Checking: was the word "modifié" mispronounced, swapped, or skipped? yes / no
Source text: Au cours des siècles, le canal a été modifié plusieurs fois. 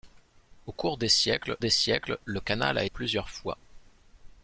yes